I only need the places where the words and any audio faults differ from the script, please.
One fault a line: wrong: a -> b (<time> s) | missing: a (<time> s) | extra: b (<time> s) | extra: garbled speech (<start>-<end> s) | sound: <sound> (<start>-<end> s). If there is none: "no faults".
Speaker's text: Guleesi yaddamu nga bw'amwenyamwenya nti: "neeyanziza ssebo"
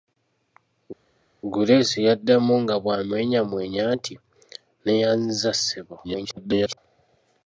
extra: garbled speech (6.0-6.8 s)